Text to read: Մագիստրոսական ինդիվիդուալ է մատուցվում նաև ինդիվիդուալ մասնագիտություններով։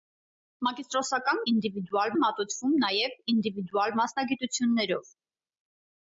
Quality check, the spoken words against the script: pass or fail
pass